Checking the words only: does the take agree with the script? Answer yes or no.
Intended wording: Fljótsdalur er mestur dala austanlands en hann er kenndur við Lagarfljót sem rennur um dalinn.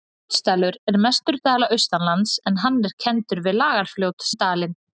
no